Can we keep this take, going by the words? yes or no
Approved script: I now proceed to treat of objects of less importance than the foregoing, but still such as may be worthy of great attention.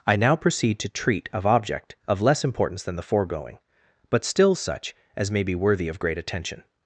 no